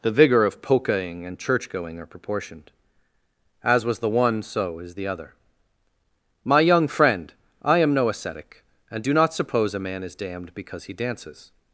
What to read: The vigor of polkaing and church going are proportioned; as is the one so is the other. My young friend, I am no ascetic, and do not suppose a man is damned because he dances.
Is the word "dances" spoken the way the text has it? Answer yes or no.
yes